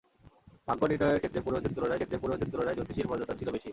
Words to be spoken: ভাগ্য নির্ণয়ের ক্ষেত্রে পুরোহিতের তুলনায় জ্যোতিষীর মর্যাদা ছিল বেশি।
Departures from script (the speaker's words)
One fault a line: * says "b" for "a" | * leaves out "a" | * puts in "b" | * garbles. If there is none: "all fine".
* puts in "ক্ষেত্রে পুরোহিতের তুলনায়"